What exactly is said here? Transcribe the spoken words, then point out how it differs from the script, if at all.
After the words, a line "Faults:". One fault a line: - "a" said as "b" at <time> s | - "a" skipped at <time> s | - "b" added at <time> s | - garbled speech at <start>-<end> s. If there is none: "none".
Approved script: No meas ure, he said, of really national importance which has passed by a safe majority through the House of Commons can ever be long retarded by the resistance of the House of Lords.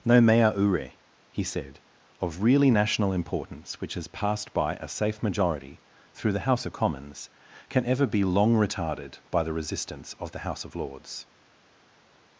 No mea ure, he said, of really national importance which has passed by a safe majority through the House of Commons can ever be long retarded by the resistance of the House of Lords.
Faults:
- "meas" said as "mea" at 0.2 s